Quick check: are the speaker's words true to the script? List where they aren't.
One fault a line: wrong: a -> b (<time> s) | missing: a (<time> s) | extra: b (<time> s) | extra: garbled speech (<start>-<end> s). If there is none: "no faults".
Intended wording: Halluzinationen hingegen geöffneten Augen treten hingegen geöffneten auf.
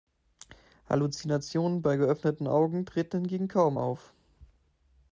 wrong: hingegen -> bei (1.8 s)
wrong: geöffneten -> kaum (3.5 s)